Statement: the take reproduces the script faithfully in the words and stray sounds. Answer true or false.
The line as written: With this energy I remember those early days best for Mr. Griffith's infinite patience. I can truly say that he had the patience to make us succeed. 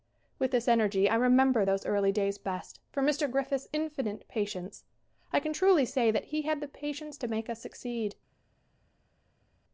true